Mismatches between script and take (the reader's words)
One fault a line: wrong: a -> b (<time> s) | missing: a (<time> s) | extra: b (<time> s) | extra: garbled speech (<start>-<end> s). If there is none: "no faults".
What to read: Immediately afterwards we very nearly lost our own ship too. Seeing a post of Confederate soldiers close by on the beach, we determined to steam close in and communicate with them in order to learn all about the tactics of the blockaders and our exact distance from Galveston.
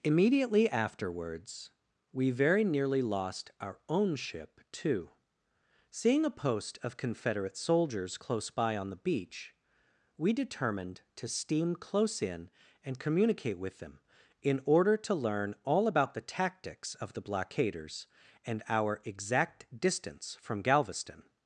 no faults